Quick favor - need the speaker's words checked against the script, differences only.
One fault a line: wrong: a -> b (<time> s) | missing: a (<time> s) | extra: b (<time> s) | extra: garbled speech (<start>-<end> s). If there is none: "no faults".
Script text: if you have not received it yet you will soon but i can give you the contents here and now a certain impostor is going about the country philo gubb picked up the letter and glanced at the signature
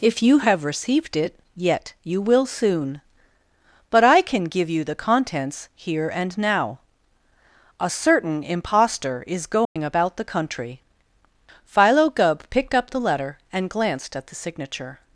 missing: not (0.6 s)